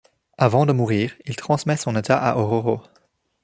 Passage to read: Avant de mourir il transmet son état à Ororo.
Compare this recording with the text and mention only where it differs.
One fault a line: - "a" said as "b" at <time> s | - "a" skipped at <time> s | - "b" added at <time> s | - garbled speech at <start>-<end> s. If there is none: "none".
none